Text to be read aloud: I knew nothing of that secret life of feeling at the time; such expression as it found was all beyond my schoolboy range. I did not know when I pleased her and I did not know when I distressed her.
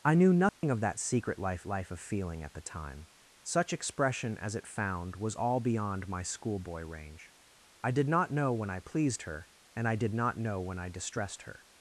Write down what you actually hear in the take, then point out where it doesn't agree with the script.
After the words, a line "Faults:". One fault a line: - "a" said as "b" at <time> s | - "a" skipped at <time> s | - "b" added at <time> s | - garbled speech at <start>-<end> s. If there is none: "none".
I knew nothing of that secret life life of feeling at the time; such expression as it found was all beyond my schoolboy range. I did not know when I pleased her and I did not know when I distressed her.
Faults:
- "life" added at 1.6 s